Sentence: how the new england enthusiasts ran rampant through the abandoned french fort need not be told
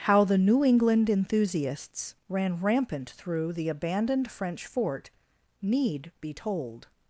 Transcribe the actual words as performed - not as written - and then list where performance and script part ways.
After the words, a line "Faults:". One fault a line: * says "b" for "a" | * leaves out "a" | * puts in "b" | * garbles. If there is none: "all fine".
how the new england enthusiasts ran rampant through the abandoned french fort need be told
Faults:
* leaves out "not"